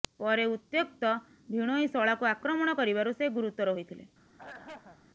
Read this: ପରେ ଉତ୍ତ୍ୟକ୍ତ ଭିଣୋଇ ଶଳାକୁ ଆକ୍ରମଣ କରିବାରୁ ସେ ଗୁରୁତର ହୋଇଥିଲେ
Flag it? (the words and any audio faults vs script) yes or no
yes